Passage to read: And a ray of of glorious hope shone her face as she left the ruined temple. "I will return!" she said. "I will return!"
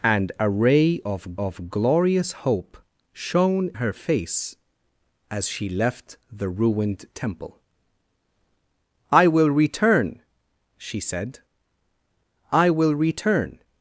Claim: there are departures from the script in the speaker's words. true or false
false